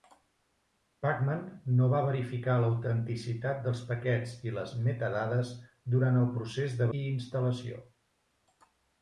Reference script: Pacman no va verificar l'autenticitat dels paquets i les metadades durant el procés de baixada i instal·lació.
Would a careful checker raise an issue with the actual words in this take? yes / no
yes